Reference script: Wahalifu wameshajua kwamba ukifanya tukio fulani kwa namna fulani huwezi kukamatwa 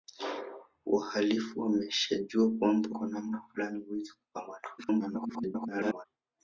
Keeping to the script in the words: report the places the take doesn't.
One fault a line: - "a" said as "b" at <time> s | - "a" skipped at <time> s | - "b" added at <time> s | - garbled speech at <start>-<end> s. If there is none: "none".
- "ukifanya tukio fulani" skipped at 2.9 s
- garbled speech at 4.8-6.1 s